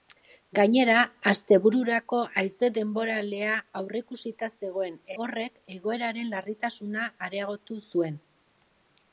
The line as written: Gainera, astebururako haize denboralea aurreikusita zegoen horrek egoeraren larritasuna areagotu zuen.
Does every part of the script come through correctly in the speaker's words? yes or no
yes